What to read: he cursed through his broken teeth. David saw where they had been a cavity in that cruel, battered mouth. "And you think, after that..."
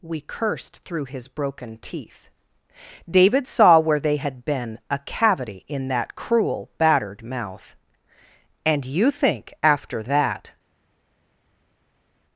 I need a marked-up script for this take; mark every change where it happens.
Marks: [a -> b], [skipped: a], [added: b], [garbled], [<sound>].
[he -> we] cursed through his broken teeth. David saw where they had been a cavity in that cruel, battered mouth. "And you think, after that..."